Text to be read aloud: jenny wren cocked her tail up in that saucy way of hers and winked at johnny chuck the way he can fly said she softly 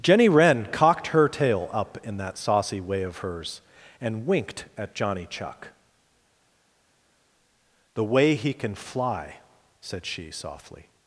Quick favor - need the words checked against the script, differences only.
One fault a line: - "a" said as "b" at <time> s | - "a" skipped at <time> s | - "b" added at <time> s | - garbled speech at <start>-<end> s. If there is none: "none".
none